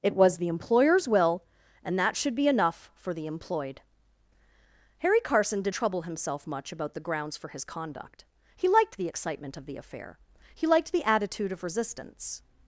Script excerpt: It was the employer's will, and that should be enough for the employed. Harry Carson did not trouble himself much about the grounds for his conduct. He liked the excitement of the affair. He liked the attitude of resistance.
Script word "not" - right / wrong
wrong